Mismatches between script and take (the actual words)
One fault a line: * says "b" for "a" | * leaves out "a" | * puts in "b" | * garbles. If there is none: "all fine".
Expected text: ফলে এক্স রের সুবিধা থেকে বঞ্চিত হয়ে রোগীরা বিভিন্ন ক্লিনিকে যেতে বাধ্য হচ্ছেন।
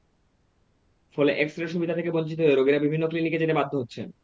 all fine